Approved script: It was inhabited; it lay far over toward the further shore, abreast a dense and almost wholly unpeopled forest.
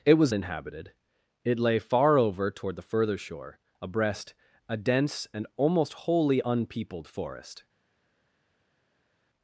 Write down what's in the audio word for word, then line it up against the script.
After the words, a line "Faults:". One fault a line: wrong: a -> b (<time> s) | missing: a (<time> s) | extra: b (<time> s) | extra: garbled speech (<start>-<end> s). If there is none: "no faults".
It was inhabited; it lay far over toward the further shore, abreast a dense and almost wholly unpeopled forest.
Faults:
no faults